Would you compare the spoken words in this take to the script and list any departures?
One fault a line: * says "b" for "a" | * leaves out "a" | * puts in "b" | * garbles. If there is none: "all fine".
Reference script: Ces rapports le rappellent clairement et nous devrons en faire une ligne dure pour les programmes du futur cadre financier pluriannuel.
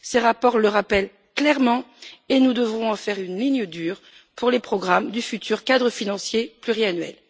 all fine